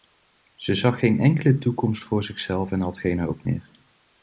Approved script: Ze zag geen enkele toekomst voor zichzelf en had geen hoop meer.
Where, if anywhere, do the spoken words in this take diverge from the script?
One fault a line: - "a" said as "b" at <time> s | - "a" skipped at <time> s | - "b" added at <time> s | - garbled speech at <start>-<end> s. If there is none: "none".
none